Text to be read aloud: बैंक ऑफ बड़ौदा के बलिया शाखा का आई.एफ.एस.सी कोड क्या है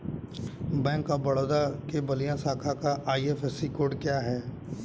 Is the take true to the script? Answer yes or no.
yes